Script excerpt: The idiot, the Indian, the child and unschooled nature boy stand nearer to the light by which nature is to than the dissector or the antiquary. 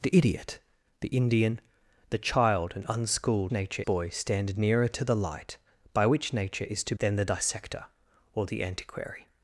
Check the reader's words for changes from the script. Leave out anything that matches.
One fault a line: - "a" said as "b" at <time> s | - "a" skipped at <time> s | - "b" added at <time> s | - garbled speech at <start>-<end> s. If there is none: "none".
none